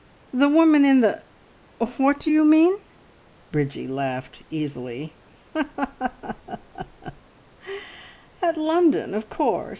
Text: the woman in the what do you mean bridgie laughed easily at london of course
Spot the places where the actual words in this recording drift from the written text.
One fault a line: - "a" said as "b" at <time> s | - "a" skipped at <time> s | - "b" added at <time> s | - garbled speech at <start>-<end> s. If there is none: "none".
none